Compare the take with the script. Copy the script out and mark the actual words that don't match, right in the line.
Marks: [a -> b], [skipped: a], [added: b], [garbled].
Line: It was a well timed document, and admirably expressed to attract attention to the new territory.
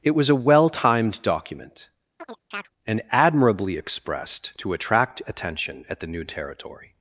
It was a well timed document, and admirably expressed to attract attention [to -> at] the new territory.